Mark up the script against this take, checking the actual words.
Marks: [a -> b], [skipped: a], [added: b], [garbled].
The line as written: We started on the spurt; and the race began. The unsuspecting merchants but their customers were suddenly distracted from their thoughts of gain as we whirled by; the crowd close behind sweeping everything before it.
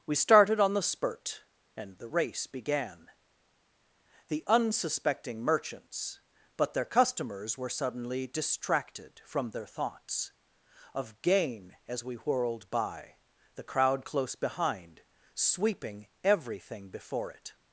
We started on the spurt; and the race began. The unsuspecting merchants but their customers were suddenly distracted from their thoughts of gain as we whirled by; the crowd close behind sweeping everything before it.